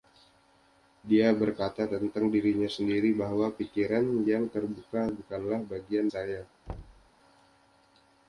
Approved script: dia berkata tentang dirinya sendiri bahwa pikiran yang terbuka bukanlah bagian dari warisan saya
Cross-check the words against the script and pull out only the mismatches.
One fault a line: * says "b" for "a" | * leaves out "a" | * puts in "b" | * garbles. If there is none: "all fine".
* leaves out "dari warisan"